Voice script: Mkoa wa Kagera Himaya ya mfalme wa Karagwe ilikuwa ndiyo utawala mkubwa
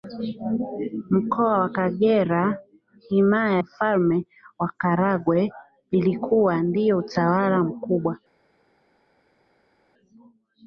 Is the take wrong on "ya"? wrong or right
wrong